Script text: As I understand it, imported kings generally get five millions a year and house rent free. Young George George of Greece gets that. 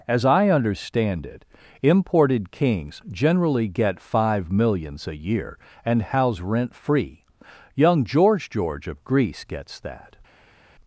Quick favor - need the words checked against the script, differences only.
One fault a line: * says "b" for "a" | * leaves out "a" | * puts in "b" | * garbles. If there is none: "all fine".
all fine